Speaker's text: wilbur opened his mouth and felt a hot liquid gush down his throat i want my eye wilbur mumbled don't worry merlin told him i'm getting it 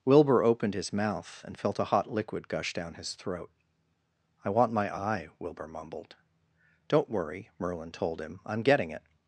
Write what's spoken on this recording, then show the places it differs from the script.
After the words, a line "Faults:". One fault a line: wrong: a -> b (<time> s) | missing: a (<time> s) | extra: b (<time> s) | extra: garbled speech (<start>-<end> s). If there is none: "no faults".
wilbur opened his mouth and felt a hot liquid gush down his throat i want my eye wilbur mumbled don't worry merlin told him i'm getting it
Faults:
no faults